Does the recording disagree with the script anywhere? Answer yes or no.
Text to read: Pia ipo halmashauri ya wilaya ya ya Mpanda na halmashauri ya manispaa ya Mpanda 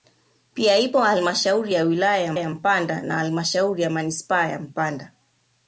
no